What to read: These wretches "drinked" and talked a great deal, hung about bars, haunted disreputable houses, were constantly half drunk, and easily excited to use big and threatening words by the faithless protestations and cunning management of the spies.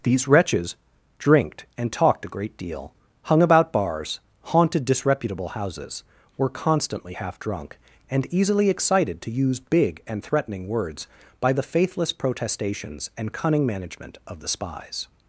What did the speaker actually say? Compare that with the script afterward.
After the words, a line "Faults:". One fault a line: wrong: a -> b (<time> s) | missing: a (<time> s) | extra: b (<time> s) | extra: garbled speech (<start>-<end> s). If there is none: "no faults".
These wretches "drinked" and talked a great deal, hung about bars, haunted disreputable houses, were constantly half drunk, and easily excited to use big and threatening words by the faithless protestations and cunning management of the spies.
Faults:
no faults